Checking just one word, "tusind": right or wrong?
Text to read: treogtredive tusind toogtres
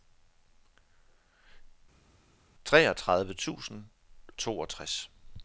right